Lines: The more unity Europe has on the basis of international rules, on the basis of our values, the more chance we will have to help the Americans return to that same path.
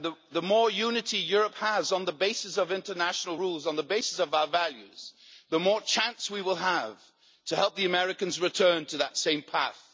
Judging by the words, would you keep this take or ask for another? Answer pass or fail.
pass